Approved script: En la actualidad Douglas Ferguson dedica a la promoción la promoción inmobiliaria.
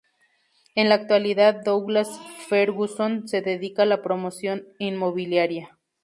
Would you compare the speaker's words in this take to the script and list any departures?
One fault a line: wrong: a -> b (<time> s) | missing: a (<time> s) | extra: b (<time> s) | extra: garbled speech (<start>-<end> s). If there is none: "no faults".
extra: se (3.3 s)
missing: la promoción (4.7 s)